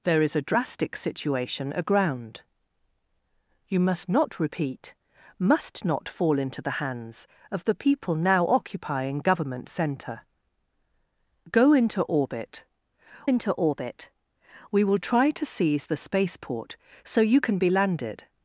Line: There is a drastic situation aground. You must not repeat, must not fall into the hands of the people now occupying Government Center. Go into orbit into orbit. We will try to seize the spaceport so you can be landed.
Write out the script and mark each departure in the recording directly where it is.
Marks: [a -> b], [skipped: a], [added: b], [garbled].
There is a drastic situation aground. You must not repeat, must not fall into the hands of the people now occupying Government Center. Go into orbit into orbit. We will try to seize the spaceport so you can be landed.